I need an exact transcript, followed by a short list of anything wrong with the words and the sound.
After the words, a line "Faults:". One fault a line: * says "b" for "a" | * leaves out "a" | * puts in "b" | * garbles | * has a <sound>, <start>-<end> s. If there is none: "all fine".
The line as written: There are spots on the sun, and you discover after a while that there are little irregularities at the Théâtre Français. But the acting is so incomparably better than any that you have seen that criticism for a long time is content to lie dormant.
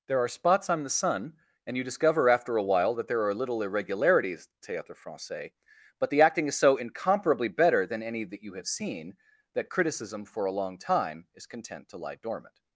There are spots on the sun, and you discover after a while that there are little irregularities Théâtre Français. But the acting is so incomparably better than any that you have seen that criticism for a long time is content to lie dormant.
Faults:
* leaves out "at the"